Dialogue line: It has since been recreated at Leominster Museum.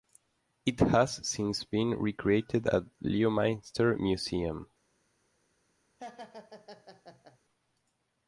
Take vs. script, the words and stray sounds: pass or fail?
fail